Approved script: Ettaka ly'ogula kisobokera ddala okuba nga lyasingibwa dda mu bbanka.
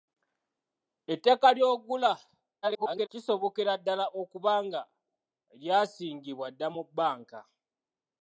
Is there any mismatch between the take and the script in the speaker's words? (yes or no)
yes